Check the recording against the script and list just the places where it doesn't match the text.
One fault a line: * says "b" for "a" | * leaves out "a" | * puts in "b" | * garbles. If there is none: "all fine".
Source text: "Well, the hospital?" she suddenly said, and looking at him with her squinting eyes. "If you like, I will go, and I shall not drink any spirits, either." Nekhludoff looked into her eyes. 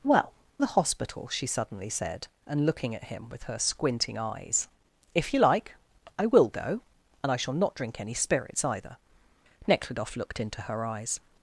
all fine